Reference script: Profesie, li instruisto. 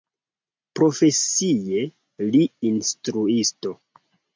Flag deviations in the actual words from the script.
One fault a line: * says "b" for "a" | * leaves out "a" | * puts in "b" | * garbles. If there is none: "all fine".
all fine